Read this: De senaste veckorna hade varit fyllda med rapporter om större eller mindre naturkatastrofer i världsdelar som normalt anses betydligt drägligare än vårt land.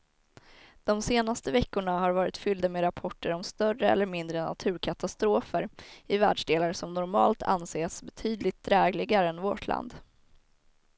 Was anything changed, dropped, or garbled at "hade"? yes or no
yes